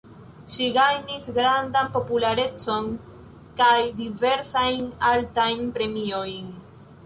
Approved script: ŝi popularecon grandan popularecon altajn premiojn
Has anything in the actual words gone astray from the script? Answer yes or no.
yes